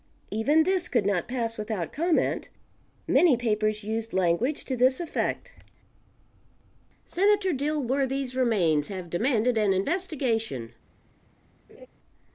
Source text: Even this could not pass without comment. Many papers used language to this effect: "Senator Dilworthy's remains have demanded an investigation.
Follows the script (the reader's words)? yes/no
yes